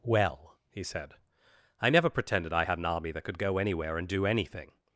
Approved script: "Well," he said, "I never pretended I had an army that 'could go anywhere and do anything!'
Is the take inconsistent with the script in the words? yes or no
no